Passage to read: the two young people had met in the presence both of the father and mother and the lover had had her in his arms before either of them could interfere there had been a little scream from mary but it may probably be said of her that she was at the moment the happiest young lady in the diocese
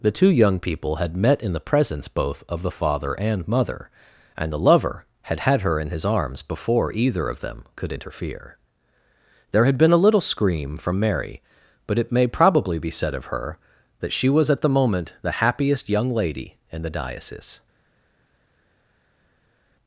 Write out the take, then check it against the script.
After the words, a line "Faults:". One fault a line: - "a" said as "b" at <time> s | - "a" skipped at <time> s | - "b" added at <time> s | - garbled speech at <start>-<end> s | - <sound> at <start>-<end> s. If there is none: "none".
the two young people had met in the presence both of the father and mother and the lover had had her in his arms before either of them could interfere there had been a little scream from mary but it may probably be said of her that she was at the moment the happiest young lady in the diocese
Faults:
none